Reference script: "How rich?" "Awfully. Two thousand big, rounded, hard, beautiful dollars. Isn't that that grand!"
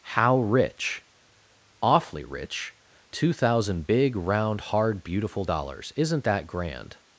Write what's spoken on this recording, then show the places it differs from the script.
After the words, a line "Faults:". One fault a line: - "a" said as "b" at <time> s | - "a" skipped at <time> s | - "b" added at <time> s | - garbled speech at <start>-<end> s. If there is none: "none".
"How rich?" "Awfully rich. Two thousand big, round, hard, beautiful dollars. Isn't that grand!"
Faults:
- "rich" added at 2.2 s
- "rounded" said as "round" at 4.1 s
- "that" skipped at 6.5 s